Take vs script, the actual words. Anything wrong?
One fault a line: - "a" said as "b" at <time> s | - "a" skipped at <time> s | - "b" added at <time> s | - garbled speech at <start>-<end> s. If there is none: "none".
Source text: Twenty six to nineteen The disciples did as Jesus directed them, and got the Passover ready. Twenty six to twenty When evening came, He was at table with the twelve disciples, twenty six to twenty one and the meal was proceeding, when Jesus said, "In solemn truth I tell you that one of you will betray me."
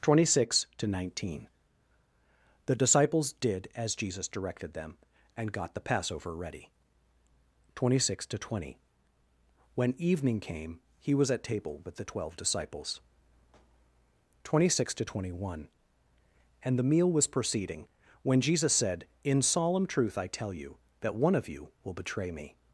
none